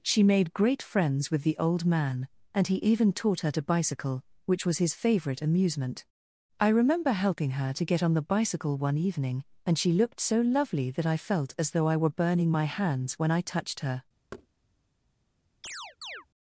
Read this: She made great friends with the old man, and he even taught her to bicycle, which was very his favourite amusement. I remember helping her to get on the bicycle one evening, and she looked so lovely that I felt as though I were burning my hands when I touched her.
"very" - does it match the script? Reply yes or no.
no